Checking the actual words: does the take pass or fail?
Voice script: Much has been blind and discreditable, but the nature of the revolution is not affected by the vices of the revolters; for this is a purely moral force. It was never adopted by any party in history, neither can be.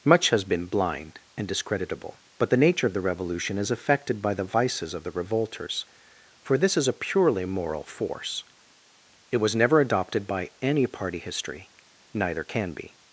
fail